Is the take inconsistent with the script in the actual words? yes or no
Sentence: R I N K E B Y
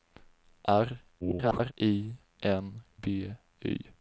yes